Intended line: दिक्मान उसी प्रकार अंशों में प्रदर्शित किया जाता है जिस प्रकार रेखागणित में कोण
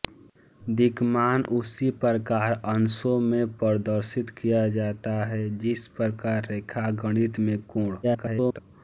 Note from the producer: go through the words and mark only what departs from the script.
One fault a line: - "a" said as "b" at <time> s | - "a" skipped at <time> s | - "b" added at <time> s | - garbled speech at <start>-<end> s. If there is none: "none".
- garbled speech at 8.0-8.6 s